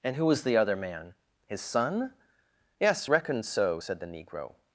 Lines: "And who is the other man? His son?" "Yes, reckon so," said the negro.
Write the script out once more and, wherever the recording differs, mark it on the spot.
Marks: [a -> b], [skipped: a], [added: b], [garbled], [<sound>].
"And who [is -> was] the other man? His son?" "Yes, reckon so," said the negro.